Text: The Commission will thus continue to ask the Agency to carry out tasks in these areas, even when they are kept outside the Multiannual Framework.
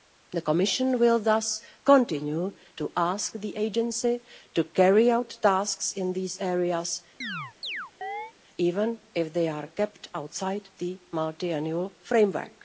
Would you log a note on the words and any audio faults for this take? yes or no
yes